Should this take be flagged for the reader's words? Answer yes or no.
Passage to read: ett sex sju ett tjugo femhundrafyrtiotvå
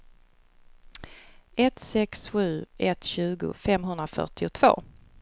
no